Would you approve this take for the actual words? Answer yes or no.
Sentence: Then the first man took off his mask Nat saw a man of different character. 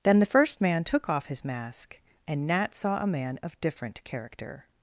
no